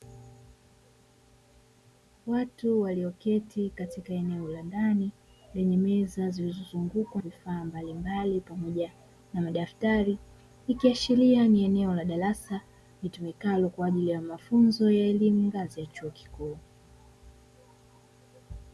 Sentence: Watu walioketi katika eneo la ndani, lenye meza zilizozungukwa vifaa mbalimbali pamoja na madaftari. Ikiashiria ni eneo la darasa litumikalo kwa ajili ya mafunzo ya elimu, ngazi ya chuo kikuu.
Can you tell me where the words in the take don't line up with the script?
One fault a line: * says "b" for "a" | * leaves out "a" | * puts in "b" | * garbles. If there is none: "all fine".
all fine